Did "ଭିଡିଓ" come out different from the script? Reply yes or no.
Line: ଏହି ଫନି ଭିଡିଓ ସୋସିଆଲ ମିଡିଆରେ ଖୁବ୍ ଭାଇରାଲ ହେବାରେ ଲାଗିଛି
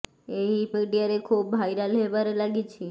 yes